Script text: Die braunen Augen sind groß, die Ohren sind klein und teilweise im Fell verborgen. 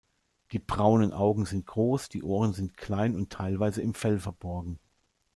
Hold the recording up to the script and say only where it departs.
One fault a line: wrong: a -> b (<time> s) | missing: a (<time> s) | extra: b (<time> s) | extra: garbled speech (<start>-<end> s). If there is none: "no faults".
no faults